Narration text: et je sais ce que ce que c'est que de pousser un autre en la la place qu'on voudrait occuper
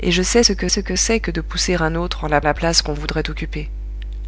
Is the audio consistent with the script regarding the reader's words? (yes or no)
yes